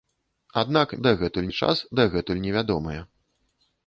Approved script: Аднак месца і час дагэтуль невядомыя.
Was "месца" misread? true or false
true